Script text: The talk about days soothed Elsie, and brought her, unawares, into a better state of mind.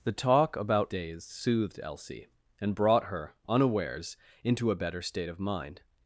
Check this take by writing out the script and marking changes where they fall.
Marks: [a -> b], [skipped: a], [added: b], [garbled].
The talk about days soothed Elsie, and brought her, unawares, into a better state of mind.